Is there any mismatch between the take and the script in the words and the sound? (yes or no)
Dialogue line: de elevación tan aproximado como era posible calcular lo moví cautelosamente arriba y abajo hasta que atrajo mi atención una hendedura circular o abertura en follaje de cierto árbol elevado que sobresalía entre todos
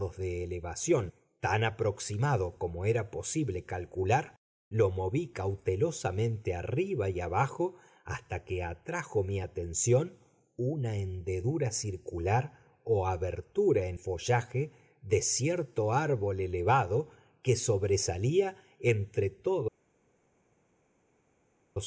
no